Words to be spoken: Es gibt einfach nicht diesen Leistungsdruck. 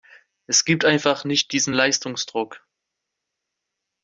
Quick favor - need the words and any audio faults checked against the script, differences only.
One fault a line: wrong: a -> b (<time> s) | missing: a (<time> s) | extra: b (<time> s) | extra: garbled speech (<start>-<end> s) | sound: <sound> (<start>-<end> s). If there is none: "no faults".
no faults